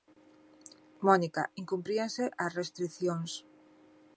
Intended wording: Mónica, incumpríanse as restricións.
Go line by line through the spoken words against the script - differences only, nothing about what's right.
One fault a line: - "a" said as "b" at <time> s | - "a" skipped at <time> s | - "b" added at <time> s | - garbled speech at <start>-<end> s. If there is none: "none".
none